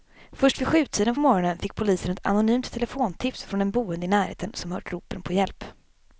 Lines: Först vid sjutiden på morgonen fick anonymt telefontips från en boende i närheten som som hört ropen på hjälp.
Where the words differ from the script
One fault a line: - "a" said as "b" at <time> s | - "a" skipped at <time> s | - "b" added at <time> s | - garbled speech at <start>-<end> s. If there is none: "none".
- "polisen ett" added at 1.7 s
- "som" skipped at 4.7 s